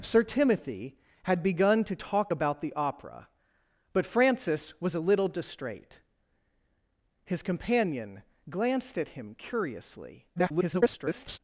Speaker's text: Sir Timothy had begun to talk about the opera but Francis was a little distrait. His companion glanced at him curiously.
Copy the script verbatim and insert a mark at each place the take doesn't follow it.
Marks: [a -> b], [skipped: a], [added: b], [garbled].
Sir Timothy had begun to talk about the opera but Francis was a little distrait. His companion glanced at him curiously. [garbled]